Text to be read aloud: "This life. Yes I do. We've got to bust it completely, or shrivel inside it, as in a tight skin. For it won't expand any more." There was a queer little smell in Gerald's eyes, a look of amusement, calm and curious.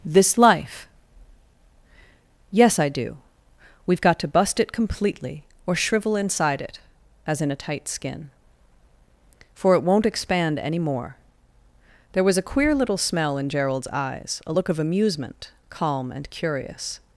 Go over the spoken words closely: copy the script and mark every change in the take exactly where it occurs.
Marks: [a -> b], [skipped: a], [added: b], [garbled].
"This life. Yes I do. We've got to bust it completely, or shrivel inside it, as in a tight skin. For it won't expand any more." There was a queer little smell in Gerald's eyes, a look of amusement, calm and curious.